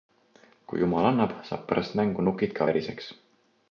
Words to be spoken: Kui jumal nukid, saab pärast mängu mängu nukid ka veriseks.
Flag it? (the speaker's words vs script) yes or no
yes